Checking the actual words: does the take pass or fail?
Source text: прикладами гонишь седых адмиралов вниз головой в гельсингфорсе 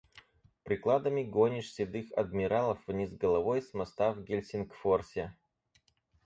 fail